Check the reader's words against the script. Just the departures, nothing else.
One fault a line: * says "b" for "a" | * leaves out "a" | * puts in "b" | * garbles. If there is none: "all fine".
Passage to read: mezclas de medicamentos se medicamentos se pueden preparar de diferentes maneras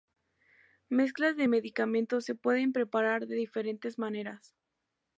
* leaves out "medicamentos se"